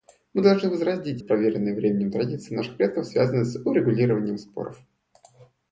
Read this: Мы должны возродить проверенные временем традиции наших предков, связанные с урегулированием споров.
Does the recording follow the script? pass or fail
pass